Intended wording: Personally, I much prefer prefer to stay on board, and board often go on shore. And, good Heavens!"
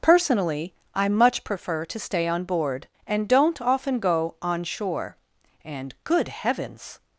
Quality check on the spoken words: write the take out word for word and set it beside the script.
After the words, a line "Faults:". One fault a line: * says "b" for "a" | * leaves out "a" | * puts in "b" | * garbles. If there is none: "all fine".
Personally, I much prefer to stay on board, and don't often go on shore. And, good Heavens!"
Faults:
* leaves out "prefer"
* says "don't" for "board"